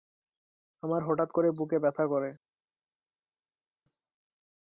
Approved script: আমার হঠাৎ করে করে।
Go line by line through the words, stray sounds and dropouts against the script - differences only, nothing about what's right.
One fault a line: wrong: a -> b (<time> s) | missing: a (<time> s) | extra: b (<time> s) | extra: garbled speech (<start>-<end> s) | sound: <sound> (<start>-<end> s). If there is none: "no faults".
extra: বুকে ব্যথা (1.5 s)